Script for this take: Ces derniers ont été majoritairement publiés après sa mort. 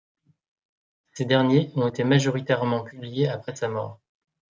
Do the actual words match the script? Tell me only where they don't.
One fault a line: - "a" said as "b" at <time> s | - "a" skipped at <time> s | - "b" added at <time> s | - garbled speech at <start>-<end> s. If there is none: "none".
none